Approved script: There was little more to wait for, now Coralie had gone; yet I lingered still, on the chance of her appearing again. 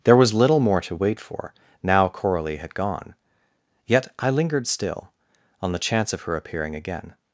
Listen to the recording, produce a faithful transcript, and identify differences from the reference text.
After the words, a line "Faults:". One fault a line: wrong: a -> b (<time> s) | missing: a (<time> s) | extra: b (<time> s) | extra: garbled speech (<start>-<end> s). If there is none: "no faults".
There was little more to wait for, now Coralie had gone; yet I lingered still, on the chance of her appearing again.
Faults:
no faults